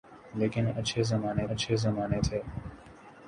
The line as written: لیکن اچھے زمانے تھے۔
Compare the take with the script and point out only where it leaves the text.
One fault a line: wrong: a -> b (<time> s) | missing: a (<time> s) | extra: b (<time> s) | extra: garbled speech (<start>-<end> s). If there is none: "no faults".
extra: اچھے زمانے (1.5 s)